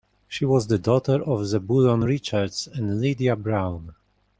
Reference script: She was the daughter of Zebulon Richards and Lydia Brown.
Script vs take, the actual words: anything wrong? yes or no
no